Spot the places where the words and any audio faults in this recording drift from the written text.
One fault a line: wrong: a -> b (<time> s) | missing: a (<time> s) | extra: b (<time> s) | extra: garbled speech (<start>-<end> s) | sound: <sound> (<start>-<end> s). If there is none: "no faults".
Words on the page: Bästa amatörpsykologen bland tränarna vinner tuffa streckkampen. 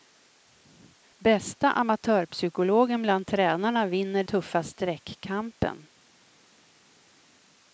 no faults